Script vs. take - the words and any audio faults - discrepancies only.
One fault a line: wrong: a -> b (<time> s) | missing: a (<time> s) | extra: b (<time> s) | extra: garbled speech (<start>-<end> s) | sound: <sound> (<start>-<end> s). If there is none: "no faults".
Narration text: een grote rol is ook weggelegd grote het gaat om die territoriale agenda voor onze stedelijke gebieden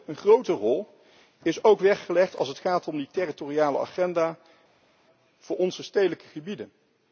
wrong: grote -> als (2.4 s)